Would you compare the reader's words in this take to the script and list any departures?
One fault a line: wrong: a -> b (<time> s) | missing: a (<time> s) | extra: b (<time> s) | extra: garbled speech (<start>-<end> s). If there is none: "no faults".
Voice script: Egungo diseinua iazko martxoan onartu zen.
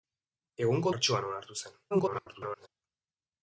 missing: diseinua iazko (0.9 s)
extra: garbled speech (1.9-2.7 s)